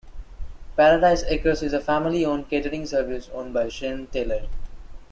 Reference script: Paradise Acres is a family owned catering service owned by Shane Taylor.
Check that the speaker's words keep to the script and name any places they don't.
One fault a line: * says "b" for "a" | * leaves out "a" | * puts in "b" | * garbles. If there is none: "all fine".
all fine